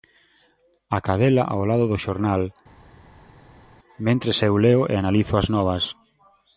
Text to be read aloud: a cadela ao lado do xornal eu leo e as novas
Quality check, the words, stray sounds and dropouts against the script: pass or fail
fail